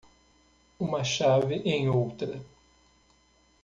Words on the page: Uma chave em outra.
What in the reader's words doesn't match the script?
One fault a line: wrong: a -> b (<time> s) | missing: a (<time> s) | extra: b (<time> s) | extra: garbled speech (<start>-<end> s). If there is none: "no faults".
no faults